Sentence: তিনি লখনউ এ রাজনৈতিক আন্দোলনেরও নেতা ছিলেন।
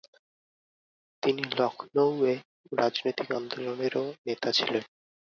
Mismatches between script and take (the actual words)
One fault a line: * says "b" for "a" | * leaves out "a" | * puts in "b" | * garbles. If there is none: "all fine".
all fine